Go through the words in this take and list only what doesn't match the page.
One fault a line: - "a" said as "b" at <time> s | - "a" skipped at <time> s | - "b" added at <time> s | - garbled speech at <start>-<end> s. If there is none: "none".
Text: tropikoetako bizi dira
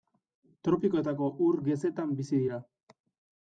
- "ur gezetan" added at 1.5 s